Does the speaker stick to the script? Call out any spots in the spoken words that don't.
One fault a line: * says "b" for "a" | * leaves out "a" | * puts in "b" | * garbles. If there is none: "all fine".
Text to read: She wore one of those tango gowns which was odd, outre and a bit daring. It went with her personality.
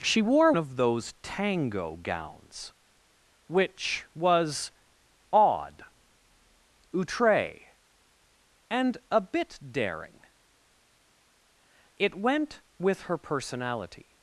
* leaves out "one"